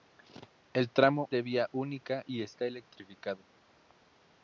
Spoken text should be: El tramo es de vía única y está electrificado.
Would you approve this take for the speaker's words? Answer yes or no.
no